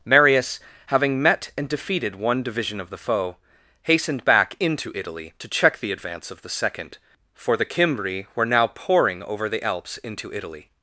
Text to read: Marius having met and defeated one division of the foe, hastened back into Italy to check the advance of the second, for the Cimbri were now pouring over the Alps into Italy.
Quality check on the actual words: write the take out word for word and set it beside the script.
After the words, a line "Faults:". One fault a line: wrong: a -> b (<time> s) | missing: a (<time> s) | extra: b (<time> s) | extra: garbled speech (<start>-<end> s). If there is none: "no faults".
Marius having met and defeated one division of the foe, hastened back into Italy to check the advance of the second, for the Cimbri were now pouring over the Alps into Italy.
Faults:
no faults